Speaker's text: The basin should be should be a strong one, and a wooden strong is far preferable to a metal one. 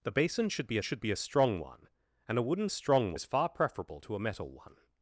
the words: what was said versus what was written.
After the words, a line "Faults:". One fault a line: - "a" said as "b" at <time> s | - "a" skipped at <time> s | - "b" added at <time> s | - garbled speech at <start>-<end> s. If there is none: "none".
The basin should be should be a strong one, and a wooden strong is far preferable to a metal one.
Faults:
none